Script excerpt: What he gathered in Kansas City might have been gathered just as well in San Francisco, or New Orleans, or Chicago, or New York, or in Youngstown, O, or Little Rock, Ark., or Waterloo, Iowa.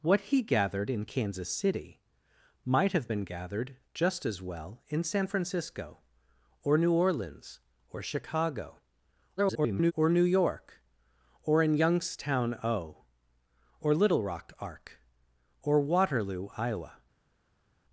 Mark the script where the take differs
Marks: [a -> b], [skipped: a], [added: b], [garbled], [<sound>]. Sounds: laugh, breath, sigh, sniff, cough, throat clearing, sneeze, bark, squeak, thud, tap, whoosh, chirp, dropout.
What he gathered in Kansas City might have been gathered just as well in San Francisco, or New Orleans, or Chicago, [garbled] or New York, or in Youngstown, O, or Little Rock, Ark., or Waterloo, Iowa.